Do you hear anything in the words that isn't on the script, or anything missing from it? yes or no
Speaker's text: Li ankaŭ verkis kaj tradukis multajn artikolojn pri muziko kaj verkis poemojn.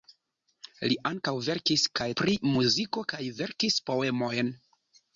yes